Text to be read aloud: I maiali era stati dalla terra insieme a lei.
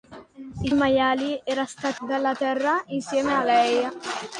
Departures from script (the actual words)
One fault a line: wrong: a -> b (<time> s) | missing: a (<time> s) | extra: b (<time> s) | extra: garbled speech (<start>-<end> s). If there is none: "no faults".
no faults